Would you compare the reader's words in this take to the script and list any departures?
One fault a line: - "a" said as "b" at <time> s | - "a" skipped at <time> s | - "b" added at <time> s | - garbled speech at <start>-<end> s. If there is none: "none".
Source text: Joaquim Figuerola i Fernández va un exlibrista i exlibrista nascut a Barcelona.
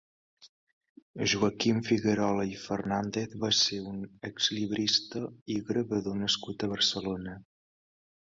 - "ser" added at 3.6 s
- "exlibrista" said as "gravador" at 5.7 s